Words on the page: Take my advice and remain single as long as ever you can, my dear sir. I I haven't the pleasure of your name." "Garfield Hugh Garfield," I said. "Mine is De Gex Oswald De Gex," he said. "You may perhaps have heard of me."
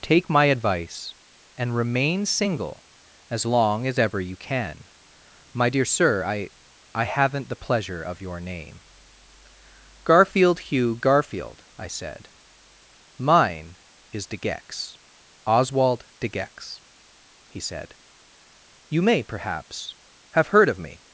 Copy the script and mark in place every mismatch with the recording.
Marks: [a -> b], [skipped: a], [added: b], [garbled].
Take my advice and remain single as long as ever you can, my dear sir. I I haven't the pleasure of your name." "Garfield Hugh Garfield," I said. "Mine is De Gex Oswald De Gex," he said. "You may perhaps have heard of me."